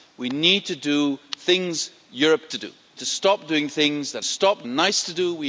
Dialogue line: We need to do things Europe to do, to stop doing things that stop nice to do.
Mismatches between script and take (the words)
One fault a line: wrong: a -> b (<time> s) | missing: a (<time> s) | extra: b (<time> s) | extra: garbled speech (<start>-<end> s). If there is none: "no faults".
no faults